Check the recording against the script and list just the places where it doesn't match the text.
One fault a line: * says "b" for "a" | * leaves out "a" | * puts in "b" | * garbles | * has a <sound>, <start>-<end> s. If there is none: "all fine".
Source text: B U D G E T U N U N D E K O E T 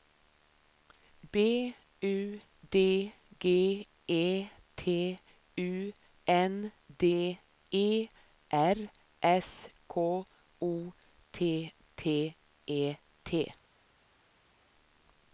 * says "D E R S" for "U N D E"
* puts in "T T"